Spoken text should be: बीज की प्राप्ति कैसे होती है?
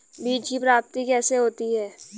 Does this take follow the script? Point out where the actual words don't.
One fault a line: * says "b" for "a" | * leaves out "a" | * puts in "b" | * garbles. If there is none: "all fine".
all fine